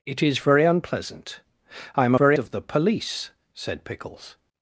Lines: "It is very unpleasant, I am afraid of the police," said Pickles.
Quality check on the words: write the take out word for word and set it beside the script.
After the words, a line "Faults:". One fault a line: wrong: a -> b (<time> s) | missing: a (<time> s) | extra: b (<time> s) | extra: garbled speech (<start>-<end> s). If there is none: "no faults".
"It is very unpleasant, I am very of the police," said Pickles.
Faults:
wrong: afraid -> very (2.1 s)